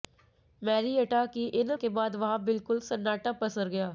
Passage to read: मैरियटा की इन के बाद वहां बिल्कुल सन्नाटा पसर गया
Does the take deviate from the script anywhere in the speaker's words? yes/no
no